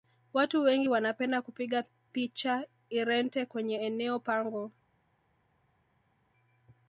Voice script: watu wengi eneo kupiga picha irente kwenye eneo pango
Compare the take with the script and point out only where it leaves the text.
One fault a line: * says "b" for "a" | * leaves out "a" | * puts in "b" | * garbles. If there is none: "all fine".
* says "wanapenda" for "eneo"